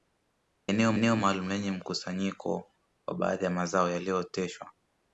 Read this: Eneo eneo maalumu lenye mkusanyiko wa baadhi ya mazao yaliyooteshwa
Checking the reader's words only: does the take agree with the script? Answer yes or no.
yes